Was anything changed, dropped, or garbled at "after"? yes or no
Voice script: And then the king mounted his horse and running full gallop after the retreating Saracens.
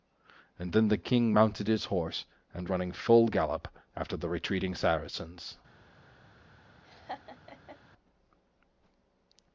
no